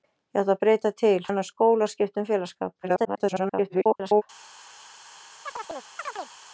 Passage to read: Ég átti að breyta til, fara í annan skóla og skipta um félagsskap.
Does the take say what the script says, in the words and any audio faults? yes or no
no